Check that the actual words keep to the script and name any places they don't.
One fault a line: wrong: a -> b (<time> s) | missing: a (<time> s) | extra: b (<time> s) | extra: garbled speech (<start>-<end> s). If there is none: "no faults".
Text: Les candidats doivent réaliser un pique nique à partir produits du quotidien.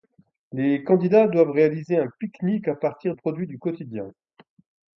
no faults